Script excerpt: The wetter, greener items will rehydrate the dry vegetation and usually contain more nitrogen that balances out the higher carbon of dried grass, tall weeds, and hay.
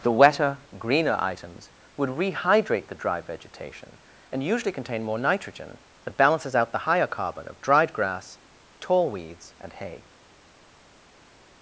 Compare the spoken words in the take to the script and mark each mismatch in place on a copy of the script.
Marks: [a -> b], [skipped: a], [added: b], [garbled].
The wetter, greener items [will -> would] rehydrate the dry vegetation and usually contain more nitrogen that balances out the higher carbon of dried grass, tall weeds, and hay.